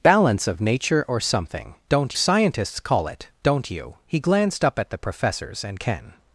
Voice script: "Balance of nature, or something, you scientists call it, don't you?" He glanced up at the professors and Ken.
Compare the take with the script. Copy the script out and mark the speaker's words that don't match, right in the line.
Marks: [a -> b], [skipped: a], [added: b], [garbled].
"Balance of nature, or something, [you -> don't] scientists call it, don't you?" He glanced up at the professors and Ken.